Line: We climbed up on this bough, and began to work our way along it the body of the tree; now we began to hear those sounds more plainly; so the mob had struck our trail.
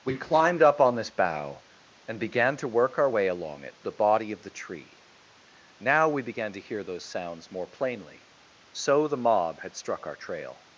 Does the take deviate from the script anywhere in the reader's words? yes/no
no